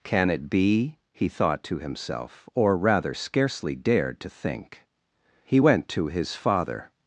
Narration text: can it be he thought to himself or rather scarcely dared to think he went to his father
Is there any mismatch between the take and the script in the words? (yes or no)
no